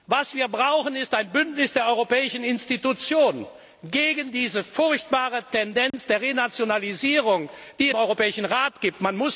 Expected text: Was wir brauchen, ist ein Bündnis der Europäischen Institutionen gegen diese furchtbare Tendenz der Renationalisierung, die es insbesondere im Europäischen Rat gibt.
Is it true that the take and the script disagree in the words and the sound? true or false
true